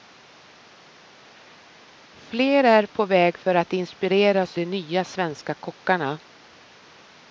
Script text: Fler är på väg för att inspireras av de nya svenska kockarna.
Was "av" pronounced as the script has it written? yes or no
no